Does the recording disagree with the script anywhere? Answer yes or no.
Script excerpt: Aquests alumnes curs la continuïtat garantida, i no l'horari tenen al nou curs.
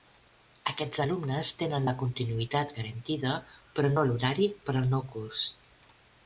yes